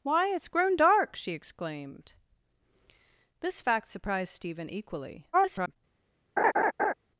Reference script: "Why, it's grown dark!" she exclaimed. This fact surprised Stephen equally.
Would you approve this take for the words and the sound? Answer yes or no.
no